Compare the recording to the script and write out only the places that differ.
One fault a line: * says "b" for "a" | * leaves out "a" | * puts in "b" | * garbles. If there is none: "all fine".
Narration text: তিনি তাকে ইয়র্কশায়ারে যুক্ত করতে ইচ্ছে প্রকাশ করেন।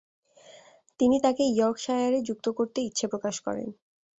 all fine